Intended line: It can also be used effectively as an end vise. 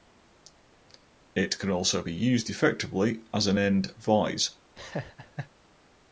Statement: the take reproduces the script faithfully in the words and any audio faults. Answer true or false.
false